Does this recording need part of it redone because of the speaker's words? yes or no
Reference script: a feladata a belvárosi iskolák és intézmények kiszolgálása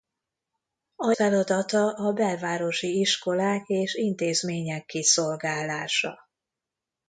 no